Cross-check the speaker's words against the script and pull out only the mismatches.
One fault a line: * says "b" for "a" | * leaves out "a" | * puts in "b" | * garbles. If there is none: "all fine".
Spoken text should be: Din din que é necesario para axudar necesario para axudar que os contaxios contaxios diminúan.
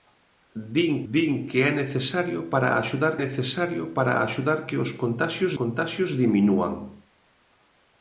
all fine